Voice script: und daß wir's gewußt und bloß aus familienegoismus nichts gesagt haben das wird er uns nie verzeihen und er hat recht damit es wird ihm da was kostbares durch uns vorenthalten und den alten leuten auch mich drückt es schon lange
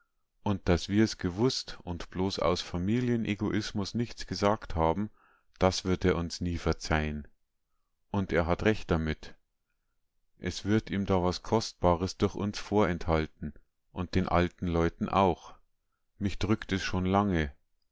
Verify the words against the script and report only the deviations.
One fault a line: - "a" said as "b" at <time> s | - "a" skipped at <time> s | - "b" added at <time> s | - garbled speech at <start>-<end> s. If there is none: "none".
none